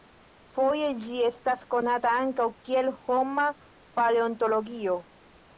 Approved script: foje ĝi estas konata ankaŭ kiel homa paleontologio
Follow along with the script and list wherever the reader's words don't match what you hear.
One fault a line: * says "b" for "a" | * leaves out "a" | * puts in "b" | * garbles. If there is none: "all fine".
all fine